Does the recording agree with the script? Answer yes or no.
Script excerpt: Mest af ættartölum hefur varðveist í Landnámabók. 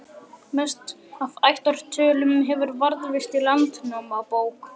yes